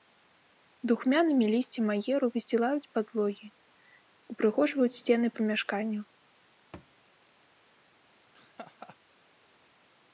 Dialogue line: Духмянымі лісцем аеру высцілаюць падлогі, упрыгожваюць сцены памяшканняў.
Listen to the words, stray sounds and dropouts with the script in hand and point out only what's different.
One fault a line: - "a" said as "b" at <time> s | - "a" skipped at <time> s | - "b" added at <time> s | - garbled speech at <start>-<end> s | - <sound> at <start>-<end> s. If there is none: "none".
- thud at 6.7-6.9 s
- laugh at 8.3-9.0 s